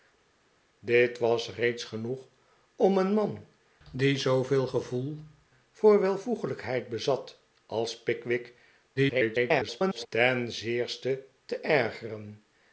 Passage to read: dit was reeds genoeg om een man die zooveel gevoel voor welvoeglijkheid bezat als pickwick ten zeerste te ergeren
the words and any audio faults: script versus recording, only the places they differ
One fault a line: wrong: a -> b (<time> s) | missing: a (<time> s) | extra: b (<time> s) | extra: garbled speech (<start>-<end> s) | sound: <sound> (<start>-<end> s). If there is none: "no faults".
extra: garbled speech (9.0-10.1 s)